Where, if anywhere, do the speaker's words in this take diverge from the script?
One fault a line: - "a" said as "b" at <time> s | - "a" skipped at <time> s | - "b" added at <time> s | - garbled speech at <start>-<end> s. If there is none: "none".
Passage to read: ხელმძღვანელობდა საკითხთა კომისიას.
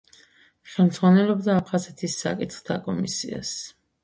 - "აფხაზეთის" added at 1.6 s